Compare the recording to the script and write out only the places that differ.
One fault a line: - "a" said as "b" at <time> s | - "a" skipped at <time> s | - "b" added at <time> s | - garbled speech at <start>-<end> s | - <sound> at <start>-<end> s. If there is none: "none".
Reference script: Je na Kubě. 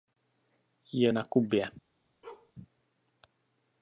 - bark at 2.2-2.5 s